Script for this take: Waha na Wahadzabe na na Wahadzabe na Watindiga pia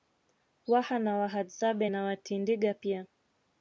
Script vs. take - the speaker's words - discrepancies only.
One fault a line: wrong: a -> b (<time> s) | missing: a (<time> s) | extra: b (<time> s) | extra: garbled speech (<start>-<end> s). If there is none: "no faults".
missing: na Wahadzabe na (2.0 s)